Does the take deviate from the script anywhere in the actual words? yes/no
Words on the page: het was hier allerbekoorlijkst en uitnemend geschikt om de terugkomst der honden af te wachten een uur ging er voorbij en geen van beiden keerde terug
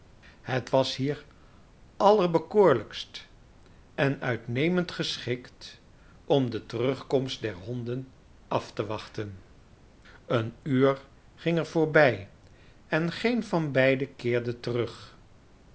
no